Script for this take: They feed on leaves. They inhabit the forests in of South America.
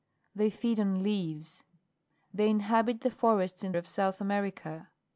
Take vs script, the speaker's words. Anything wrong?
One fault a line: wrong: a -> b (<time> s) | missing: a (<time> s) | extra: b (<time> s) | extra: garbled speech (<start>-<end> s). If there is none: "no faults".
no faults